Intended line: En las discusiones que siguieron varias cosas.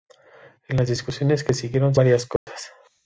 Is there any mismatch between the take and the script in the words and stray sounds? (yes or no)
yes